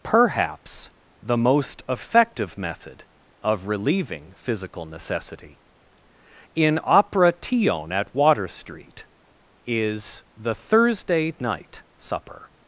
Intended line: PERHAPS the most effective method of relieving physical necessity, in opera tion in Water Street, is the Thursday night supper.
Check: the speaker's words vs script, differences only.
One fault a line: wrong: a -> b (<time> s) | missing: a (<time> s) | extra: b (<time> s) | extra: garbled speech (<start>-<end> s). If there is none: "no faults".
wrong: in -> at (7.9 s)